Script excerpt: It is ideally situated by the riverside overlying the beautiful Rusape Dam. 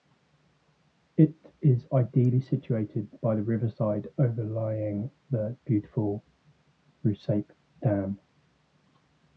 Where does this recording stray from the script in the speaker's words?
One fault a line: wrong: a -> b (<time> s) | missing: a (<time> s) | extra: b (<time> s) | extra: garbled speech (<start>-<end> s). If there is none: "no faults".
no faults